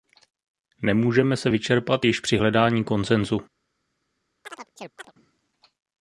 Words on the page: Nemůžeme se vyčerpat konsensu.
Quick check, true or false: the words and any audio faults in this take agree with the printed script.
false